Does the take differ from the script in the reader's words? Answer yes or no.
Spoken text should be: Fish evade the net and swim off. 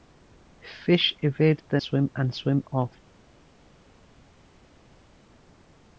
yes